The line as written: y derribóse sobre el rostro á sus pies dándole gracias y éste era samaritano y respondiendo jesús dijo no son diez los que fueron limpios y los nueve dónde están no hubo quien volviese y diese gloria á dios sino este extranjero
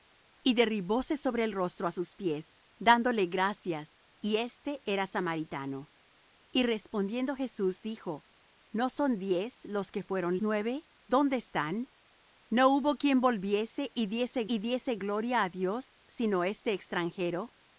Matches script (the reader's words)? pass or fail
fail